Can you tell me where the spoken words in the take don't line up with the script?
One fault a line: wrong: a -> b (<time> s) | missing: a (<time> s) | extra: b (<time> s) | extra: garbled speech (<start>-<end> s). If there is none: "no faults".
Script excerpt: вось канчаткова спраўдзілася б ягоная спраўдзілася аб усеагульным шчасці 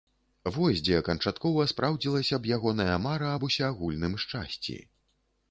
extra: дзе (0.8 s)
wrong: спраўдзілася -> мара (3.1 s)